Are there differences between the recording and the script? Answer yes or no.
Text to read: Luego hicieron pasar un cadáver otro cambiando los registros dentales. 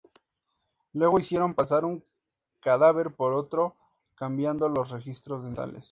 yes